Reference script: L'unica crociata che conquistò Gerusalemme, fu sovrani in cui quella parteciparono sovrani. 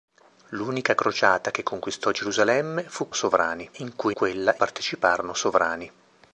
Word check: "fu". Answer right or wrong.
right